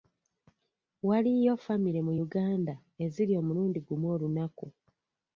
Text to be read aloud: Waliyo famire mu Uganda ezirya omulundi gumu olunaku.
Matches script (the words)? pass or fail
pass